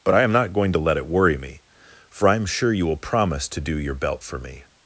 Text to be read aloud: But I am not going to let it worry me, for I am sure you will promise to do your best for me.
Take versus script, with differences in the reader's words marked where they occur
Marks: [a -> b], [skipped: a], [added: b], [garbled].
But I am not going to let it worry me, for I am sure you will promise to do your [best -> belt] for me.